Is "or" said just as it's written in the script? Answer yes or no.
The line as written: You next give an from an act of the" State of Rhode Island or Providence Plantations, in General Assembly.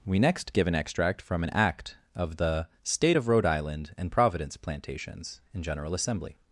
no